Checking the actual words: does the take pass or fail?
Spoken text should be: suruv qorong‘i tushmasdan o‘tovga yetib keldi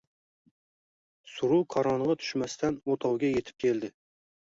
pass